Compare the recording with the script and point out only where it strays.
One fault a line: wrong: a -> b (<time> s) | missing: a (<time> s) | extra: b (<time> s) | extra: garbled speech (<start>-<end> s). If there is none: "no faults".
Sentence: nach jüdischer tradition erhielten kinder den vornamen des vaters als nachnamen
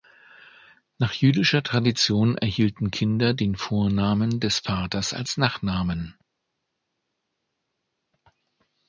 no faults